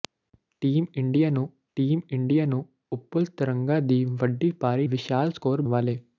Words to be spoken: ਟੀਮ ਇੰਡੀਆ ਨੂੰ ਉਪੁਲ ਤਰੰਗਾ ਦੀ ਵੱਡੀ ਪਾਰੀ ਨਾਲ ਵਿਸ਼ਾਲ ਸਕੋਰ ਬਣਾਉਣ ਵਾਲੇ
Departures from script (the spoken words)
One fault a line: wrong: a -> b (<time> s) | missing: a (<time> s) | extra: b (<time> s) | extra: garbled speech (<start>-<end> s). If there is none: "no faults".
extra: ਟੀਮ ਇੰਡੀਆ ਨੂੰ (1.8 s)
missing: ਨਾਲ (4.9 s)
missing: ਬਣਾਉਣ (5.6 s)